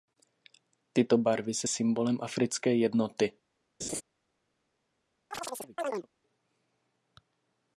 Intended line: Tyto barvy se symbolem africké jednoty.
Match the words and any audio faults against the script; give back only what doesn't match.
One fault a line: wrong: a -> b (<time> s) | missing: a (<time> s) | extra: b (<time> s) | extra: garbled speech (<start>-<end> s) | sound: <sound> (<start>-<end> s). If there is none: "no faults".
sound: laugh (3.8-4.0 s)
sound: chirp (5.3-6.1 s)